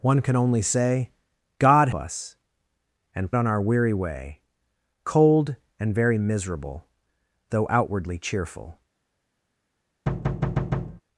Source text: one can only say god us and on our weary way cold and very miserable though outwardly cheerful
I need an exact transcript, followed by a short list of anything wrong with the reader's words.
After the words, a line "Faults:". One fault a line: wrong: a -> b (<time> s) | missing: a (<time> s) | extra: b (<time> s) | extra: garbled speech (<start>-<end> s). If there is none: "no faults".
one can only say god us and on our weary way cold and very miserable though outwardly cheerful
Faults:
no faults